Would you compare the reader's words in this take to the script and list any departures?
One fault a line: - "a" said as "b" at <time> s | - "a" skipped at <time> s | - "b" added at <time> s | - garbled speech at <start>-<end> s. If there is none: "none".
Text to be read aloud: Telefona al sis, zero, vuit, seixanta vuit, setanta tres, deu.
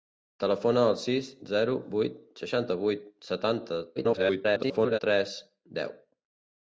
- garbled speech at 4.0-5.0 s